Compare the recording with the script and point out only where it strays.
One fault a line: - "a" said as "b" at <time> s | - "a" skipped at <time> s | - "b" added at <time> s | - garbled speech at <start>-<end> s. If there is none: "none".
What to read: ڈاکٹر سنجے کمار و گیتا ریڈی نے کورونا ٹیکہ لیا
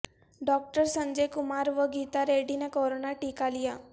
none